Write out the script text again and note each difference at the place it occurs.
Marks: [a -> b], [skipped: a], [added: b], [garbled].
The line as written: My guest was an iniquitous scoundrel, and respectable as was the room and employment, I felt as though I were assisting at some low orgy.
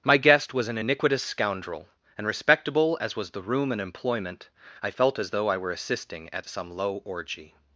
My guest was an iniquitous scoundrel, and respectable as was the room and employment, I felt as though I were assisting at some low orgy.